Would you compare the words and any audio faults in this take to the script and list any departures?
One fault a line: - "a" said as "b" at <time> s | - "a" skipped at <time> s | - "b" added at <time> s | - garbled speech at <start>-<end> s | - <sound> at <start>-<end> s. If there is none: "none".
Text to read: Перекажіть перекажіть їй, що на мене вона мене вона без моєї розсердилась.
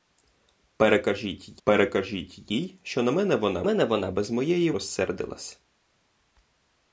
none